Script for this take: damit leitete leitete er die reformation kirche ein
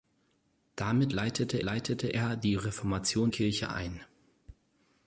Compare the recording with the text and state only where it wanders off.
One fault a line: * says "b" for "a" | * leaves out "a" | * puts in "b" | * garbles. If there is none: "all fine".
all fine